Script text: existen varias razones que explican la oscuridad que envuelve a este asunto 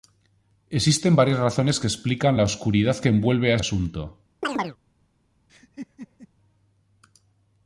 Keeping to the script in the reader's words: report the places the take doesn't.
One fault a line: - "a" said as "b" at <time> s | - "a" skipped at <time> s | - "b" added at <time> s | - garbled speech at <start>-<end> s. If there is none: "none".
- "este" skipped at 3.6 s